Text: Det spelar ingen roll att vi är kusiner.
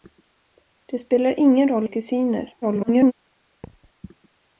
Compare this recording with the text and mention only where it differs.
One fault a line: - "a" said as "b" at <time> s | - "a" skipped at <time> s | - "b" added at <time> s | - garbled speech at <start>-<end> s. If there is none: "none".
- "att vi" skipped at 1.9 s
- garbled speech at 2.6-3.1 s